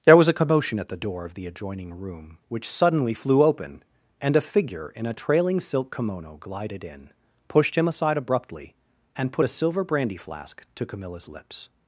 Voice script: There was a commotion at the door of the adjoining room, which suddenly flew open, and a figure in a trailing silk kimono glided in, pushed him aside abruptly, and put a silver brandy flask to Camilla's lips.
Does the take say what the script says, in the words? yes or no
yes